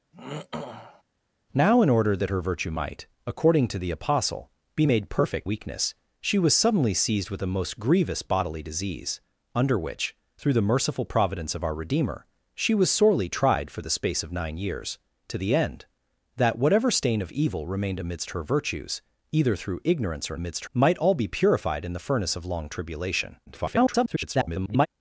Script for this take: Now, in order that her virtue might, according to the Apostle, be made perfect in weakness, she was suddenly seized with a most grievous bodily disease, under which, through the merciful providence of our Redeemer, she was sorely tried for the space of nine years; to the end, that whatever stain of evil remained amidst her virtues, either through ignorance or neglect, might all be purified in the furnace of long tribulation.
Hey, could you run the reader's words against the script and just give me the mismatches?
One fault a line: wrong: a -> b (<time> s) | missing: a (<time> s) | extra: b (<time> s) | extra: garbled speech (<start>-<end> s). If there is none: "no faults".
missing: in (5.5 s)
wrong: neglect -> amidst (20.3 s)
extra: garbled speech (23.5-24.9 s)